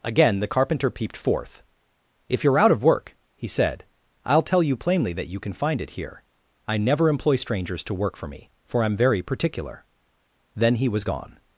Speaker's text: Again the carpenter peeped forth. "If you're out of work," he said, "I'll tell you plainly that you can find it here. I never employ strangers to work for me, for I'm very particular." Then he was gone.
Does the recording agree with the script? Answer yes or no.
yes